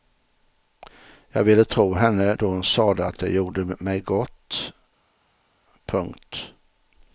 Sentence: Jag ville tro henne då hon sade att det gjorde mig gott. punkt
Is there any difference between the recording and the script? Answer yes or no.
no